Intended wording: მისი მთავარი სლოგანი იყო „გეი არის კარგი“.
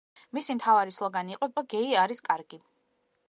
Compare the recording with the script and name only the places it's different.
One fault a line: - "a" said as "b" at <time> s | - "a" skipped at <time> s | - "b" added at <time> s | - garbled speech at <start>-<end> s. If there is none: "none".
- "იყო" added at 1.5 s